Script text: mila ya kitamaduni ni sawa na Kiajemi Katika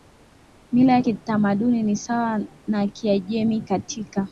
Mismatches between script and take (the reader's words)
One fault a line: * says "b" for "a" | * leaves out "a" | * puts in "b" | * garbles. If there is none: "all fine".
all fine